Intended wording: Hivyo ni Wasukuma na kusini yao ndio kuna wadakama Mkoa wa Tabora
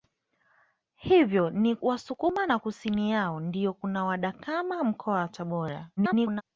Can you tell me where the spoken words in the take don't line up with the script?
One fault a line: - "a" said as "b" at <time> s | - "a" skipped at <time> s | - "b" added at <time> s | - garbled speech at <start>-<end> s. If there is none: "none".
- garbled speech at 6.0-6.4 s